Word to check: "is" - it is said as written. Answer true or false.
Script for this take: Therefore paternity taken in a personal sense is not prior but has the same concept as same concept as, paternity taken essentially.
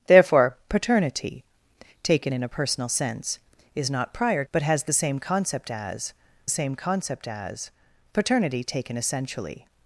true